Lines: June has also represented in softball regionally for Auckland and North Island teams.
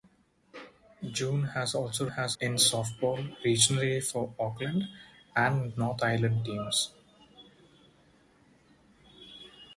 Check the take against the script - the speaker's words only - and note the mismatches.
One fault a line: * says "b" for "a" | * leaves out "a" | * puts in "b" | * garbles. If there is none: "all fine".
* says "has" for "represented"